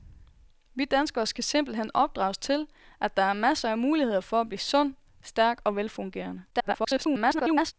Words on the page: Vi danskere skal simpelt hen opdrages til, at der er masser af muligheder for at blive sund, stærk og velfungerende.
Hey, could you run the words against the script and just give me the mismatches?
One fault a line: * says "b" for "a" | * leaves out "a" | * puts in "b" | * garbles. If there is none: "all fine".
* garbles